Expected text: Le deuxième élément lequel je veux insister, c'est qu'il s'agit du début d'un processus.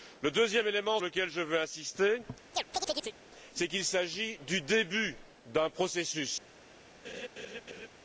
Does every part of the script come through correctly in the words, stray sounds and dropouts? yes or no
no